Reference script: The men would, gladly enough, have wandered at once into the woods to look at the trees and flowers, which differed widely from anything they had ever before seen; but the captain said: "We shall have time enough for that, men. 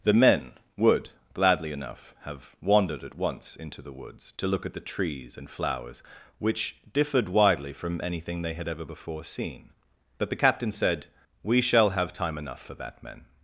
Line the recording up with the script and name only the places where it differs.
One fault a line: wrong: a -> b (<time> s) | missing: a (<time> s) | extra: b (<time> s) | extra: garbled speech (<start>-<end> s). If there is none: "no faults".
no faults